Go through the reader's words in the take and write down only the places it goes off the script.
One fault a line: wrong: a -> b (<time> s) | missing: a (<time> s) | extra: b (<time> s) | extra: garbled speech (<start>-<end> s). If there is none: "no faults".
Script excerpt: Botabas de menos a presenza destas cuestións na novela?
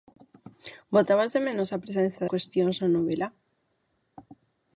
missing: destas (2.2 s)